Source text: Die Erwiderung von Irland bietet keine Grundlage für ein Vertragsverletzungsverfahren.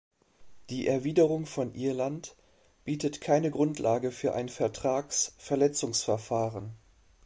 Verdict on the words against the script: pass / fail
pass